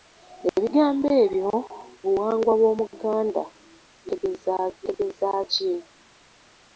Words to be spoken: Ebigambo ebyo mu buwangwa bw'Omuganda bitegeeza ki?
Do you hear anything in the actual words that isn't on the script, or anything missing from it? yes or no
yes